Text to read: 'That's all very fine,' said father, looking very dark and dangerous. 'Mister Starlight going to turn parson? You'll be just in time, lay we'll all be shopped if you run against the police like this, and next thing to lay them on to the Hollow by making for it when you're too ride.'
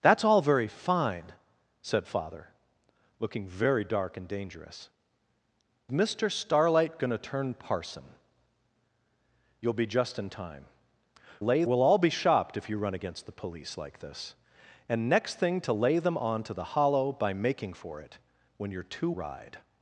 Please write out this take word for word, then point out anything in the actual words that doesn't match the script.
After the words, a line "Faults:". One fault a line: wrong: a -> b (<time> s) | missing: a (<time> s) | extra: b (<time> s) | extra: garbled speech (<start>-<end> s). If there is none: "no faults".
'That's all very fine,' said father, looking very dark and dangerous. 'Mister Starlight going to turn parson? You'll be just in time, lay we'll all be shopped if you run against the police like this, and next thing to lay them on to the Hollow by making for it when you're too ride.'
Faults:
no faults